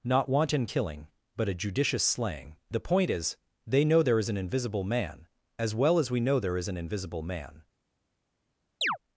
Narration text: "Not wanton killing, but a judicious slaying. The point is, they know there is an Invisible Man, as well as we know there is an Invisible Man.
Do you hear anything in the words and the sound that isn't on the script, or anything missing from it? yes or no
yes